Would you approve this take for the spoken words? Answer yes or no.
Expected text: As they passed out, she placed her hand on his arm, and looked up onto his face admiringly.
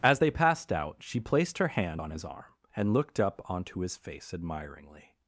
yes